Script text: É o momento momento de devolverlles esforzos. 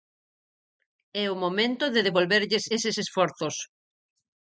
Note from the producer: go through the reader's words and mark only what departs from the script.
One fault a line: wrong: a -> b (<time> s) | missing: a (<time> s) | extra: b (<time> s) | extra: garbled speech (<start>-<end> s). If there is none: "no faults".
missing: momento (1.9 s)
extra: eses (2.8 s)